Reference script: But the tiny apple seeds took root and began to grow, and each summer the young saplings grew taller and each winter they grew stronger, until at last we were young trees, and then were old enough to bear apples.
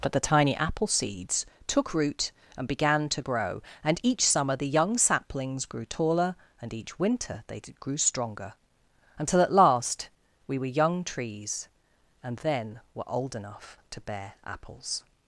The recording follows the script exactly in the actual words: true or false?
true